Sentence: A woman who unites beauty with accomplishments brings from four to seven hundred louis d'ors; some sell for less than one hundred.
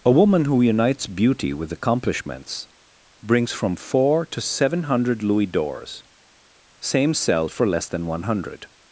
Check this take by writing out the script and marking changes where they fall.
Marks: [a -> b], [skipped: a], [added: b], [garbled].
A woman who unites beauty with accomplishments brings from four to seven hundred louis d'ors; [some -> same] sell for less than one hundred.